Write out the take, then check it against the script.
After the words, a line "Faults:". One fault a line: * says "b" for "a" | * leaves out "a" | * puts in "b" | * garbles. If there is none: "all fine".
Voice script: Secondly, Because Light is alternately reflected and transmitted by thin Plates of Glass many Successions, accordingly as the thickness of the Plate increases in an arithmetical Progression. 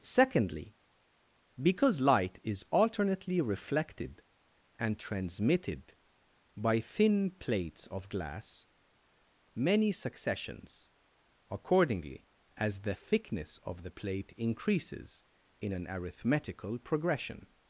Secondly, Because Light is alternately reflected and transmitted by thin Plates of Glass many Successions, accordingly as the thickness of the Plate increases in an arithmetical Progression.
Faults:
all fine